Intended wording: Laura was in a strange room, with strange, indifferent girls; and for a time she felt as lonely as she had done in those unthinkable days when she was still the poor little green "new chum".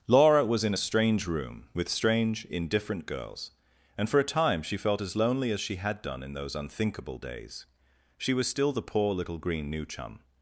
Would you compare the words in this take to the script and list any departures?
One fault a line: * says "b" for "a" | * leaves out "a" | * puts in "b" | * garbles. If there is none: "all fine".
* leaves out "when"